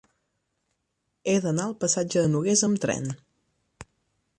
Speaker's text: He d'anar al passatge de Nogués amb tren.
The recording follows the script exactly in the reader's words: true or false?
true